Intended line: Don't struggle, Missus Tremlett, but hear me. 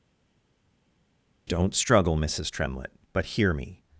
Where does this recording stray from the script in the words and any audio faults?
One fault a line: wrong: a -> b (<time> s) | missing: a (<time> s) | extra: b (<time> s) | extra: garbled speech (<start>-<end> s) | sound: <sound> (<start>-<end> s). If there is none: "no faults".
no faults